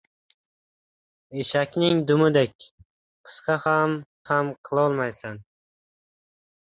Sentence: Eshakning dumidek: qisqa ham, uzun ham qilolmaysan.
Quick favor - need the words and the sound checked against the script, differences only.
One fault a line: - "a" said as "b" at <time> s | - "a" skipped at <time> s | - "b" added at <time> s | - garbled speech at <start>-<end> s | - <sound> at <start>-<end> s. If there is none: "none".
- "uzun" skipped at 4.0 s